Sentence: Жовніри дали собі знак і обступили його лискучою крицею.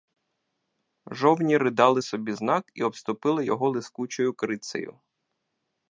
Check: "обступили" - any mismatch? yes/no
no